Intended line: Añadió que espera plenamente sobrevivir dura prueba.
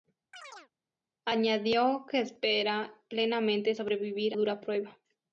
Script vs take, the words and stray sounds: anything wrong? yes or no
yes